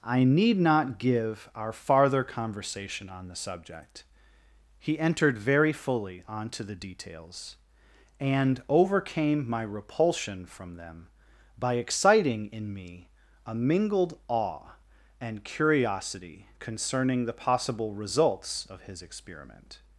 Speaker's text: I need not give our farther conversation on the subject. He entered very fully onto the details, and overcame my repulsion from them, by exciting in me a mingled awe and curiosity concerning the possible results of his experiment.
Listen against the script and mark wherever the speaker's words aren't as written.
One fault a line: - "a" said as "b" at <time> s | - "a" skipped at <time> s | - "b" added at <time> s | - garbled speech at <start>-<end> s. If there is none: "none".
none